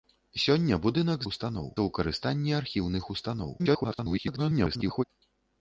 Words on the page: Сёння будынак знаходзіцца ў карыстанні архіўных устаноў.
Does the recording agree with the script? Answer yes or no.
no